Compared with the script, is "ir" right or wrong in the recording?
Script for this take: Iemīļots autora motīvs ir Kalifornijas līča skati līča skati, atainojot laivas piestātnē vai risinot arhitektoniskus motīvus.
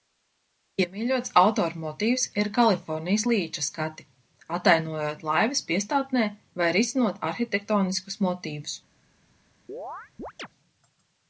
right